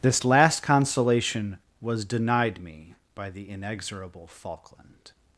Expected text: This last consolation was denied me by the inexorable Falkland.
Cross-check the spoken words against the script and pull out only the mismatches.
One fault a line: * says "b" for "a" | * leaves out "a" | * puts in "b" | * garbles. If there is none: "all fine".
all fine